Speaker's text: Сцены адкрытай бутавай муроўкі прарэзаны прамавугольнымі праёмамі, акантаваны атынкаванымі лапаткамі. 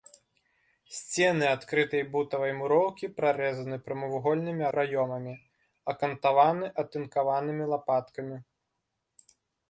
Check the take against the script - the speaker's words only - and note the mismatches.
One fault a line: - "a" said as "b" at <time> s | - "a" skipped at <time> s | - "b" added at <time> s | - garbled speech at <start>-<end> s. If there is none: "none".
none